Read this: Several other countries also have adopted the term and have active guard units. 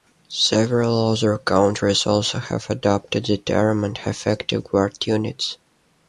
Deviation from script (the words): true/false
false